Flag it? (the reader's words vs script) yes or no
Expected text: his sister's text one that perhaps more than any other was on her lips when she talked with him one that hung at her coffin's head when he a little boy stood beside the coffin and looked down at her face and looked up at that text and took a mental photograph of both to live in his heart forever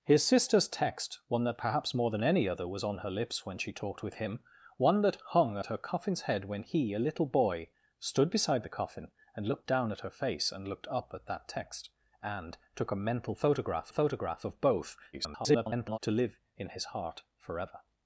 yes